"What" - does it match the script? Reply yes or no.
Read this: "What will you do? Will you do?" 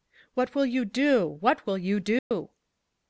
yes